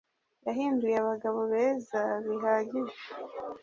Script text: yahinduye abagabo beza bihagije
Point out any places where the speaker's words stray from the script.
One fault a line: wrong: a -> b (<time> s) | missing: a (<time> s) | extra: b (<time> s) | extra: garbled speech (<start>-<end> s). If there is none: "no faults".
no faults